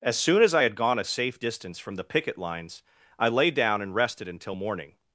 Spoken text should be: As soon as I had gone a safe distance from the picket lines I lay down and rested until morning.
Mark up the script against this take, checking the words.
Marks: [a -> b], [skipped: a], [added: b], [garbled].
As soon as I had gone a safe distance from the picket lines I lay down and rested until morning.